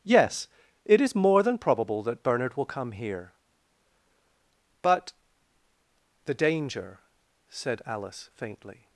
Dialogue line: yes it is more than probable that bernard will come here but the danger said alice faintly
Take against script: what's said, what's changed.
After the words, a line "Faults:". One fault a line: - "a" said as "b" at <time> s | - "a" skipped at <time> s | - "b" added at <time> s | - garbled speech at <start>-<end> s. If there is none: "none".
yes it is more than probable that bernard will come here but the danger said alice faintly
Faults:
none